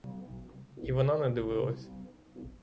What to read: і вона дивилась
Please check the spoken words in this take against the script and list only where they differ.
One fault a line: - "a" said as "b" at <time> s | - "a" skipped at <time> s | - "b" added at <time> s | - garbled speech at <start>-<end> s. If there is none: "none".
- "не" added at 1.2 s